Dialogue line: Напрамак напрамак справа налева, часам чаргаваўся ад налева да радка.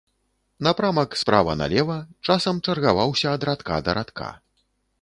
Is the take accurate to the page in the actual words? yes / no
no